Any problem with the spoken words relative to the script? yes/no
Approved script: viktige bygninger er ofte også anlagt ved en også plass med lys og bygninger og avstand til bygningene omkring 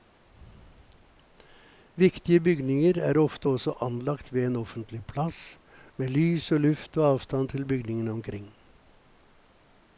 yes